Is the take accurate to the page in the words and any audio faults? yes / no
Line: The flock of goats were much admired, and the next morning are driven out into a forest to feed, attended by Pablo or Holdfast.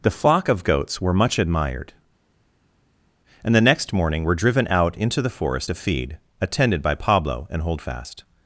no